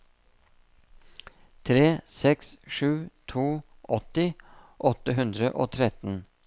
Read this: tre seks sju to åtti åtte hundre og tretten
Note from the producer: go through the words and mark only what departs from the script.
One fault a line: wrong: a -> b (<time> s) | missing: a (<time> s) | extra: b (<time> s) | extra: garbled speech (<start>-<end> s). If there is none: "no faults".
no faults